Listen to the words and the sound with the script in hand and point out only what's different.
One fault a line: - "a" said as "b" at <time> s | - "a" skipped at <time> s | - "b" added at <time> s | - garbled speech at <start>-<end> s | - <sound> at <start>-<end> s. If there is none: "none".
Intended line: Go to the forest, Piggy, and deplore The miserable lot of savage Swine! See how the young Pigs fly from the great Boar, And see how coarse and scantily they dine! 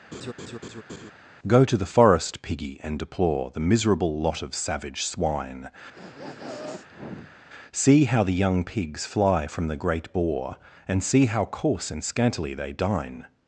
- laugh at 0.1-1.1 s
- sniff at 5.9-7.4 s